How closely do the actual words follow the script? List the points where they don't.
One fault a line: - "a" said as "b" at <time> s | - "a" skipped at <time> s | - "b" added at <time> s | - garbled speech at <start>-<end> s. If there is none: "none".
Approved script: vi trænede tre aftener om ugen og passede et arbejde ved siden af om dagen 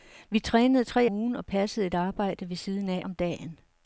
- "aftener om" skipped at 1.1 s